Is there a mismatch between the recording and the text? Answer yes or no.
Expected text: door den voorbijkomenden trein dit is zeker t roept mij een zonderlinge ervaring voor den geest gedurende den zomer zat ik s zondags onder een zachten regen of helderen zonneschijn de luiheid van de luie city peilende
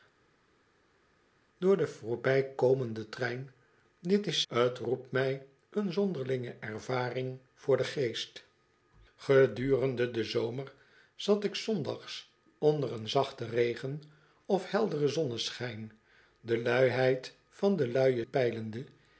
yes